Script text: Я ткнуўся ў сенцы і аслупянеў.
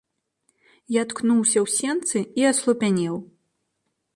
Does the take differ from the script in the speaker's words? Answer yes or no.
no